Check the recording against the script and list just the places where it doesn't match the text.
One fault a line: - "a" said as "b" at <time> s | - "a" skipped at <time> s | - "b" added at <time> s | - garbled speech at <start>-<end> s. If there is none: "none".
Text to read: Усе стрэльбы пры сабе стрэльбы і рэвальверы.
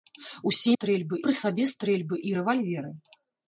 none